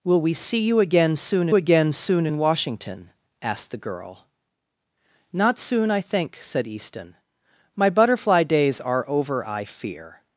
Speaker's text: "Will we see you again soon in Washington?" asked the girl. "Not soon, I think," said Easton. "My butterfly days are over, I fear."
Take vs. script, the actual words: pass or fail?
fail